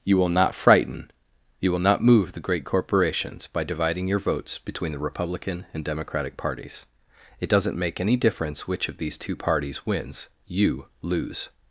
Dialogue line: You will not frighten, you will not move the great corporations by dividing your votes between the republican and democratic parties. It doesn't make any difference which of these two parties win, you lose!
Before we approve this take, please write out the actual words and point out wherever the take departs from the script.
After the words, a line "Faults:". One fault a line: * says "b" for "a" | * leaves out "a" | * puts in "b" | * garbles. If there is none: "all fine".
You will not frighten, you will not move the great corporations by dividing your votes between the republican and democratic parties. It doesn't make any difference which of these two parties wins, you lose!
Faults:
* says "wins" for "win"